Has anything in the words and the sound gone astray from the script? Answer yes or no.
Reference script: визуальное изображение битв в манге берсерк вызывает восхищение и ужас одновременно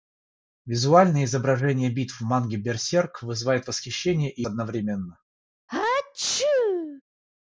yes